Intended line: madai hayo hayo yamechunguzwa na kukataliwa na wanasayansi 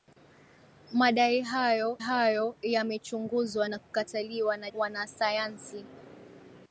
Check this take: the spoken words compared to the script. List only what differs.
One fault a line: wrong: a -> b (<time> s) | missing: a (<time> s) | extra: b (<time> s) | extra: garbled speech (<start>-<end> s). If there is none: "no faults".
no faults